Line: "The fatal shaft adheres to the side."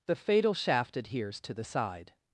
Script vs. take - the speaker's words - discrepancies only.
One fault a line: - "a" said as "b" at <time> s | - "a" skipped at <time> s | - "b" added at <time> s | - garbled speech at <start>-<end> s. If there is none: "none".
none